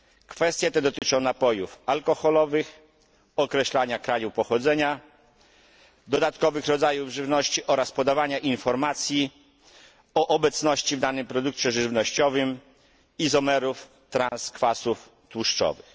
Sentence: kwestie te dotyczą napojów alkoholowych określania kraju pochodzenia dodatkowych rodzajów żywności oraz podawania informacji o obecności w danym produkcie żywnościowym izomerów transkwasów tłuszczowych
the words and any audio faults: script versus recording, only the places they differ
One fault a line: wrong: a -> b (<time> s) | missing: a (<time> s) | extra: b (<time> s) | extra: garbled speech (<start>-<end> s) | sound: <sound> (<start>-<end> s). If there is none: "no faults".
sound: dropout (1.0-1.0 s)
sound: dropout (14.3-14.3 s)